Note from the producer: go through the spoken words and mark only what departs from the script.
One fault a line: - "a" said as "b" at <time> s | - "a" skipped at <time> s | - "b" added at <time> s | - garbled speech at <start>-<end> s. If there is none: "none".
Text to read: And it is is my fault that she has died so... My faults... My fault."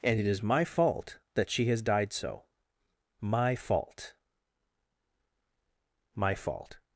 - "is" skipped at 0.4 s
- "faults" said as "fault" at 3.5 s